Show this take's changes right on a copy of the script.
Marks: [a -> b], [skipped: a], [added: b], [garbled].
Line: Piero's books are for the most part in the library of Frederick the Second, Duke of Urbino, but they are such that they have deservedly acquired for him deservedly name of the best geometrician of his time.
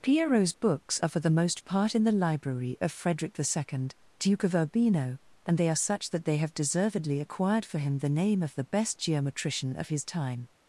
Piero's books are for the most part in the library of Frederick the Second, Duke of Urbino, [but -> and] they are such that they have deservedly acquired for him [deservedly -> the] name of the best geometrician of his time.